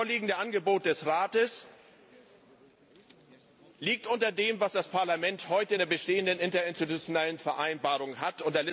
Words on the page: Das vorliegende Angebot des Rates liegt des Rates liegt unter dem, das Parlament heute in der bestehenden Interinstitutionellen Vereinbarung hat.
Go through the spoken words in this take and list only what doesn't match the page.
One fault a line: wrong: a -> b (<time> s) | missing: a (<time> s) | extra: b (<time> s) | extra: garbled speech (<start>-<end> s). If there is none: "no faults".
missing: des Rates liegt (4.1 s)
extra: was (4.6 s)